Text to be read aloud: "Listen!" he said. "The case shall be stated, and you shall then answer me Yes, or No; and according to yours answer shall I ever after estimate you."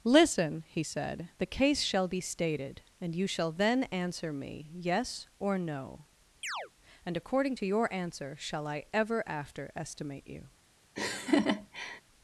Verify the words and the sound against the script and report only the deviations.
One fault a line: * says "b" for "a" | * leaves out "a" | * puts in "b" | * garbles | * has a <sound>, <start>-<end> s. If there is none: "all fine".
* has a chirp, 6.4-6.7 s
* says "your" for "yours"
* has a laugh, 11.0-12.0 s